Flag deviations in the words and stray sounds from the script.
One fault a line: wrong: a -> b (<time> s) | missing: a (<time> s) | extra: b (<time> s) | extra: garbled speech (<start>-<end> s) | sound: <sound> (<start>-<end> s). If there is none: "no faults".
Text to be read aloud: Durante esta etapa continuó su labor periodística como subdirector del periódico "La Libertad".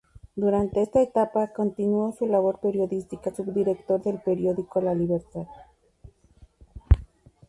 missing: como (3.3 s)